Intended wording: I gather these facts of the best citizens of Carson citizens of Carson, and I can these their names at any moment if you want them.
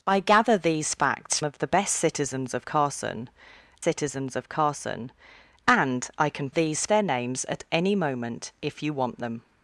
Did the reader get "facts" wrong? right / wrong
right